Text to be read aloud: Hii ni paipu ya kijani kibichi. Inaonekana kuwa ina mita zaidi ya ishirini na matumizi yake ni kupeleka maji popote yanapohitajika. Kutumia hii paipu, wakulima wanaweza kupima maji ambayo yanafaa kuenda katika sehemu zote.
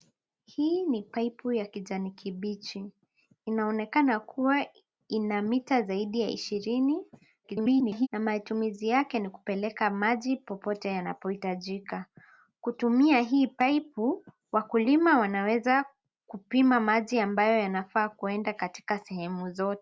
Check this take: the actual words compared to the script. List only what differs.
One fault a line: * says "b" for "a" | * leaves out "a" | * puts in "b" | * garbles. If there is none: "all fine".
* garbles